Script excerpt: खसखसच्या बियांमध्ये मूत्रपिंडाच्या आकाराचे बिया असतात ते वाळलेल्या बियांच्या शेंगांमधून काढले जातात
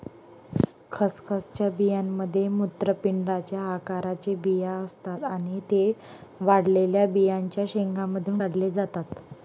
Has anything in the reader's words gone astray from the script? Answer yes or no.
yes